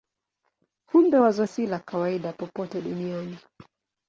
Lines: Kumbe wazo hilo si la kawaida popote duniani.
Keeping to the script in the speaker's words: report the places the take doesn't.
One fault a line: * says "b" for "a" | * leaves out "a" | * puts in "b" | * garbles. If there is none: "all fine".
* leaves out "hilo"